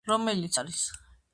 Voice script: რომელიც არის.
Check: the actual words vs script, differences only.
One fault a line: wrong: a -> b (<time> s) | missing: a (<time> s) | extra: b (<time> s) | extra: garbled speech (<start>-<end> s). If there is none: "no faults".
no faults